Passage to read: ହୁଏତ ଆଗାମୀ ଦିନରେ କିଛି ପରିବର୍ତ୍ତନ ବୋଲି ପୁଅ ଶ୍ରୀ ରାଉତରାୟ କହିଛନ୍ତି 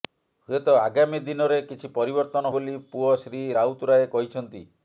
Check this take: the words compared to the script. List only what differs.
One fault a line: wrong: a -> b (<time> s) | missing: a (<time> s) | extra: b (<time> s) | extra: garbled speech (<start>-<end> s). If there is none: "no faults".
no faults